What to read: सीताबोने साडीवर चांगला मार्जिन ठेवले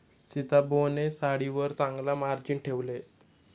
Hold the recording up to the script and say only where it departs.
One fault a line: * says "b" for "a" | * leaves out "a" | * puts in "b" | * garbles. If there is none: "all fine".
all fine